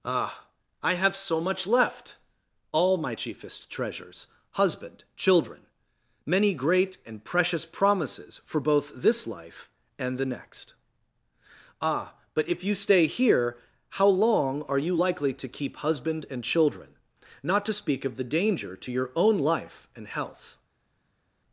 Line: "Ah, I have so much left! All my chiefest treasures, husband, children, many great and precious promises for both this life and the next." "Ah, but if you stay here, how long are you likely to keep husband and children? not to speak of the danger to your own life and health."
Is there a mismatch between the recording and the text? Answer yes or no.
no